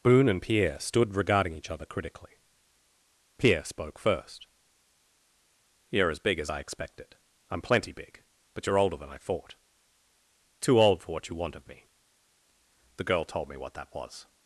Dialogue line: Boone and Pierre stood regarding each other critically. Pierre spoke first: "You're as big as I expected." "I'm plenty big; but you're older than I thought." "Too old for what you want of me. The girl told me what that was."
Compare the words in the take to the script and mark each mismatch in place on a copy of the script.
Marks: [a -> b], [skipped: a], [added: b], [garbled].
Boone and Pierre stood regarding each other critically. Pierre spoke first: "You're as big as I expected." "I'm plenty big; but you're older than I thought." "Too old for what you want of me. The girl told me what that was."